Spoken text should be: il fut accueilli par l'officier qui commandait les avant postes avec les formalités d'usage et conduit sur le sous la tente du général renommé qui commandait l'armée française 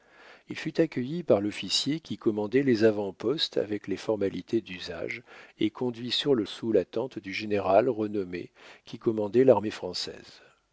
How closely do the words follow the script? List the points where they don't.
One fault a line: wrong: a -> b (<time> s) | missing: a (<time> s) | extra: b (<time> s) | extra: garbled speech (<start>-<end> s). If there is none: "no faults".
no faults